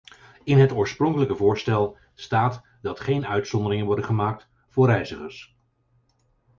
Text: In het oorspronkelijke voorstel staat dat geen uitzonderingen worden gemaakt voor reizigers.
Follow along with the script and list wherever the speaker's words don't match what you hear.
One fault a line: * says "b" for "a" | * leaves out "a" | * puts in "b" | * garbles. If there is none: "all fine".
all fine